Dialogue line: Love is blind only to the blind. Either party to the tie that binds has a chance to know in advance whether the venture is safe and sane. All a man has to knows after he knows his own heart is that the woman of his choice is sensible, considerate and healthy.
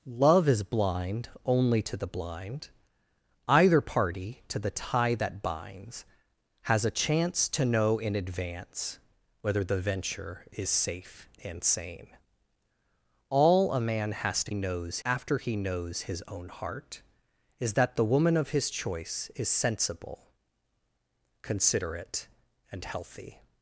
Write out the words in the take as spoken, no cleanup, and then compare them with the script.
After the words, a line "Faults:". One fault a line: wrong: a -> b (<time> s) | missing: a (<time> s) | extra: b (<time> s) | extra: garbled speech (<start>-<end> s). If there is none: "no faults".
Love is blind only to the blind. Either party to the tie that binds has a chance to know in advance whether the venture is safe and sane. All a man has to knows after he knows his own heart is that the woman of his choice is sensible, considerate and healthy.
Faults:
no faults